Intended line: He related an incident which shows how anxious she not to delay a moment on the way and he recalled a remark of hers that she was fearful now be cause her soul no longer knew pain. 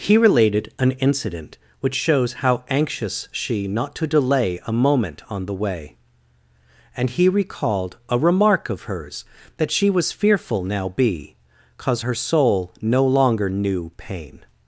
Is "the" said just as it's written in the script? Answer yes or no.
yes